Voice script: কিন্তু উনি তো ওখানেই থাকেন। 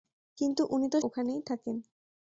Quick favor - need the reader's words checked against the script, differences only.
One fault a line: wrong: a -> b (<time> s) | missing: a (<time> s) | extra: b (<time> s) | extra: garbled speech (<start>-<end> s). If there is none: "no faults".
no faults